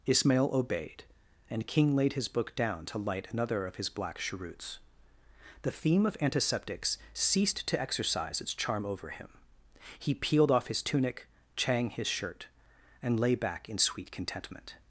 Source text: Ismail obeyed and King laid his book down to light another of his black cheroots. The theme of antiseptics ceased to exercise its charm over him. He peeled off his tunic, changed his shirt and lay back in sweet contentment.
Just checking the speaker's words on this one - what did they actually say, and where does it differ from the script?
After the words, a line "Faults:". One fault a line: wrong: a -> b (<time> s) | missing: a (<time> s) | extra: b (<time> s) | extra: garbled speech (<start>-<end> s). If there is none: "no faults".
Ismail obeyed and King laid his book down to light another of his black cheroots. The theme of antiseptics ceased to exercise its charm over him. He peeled off his tunic, chang his shirt and lay back in sweet contentment.
Faults:
wrong: changed -> chang (11.6 s)